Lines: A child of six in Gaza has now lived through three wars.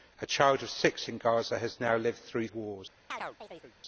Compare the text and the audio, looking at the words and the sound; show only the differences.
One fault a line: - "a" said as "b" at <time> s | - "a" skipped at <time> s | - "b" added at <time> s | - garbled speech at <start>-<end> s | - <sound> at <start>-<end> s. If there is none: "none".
- "three" skipped at 2.5 s
- chirp at 3.1-3.7 s